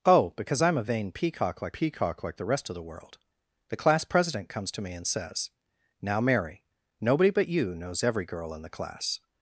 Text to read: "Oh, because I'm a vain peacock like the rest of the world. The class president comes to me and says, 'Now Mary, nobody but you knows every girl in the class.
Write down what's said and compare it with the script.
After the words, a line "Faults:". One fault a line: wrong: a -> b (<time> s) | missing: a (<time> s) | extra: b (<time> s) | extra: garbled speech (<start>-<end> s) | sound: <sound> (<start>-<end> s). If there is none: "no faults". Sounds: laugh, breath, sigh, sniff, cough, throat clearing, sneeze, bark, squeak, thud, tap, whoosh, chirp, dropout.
"Oh, because I'm a vain peacock like peacock like the rest of the world. The class president comes to me and says, 'Now Mary, nobody but you knows every girl in the class.
Faults:
extra: peacock like (1.7 s)